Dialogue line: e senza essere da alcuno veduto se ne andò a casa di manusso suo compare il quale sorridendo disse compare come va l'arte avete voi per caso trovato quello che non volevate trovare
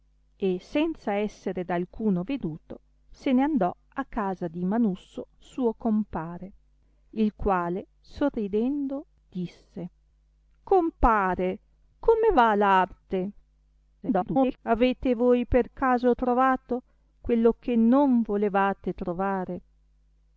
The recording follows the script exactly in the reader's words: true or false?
false